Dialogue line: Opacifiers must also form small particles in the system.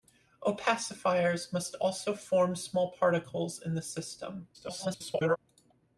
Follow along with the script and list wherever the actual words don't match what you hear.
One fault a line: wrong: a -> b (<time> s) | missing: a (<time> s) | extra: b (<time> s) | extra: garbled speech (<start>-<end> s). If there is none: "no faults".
extra: garbled speech (4.5-5.4 s)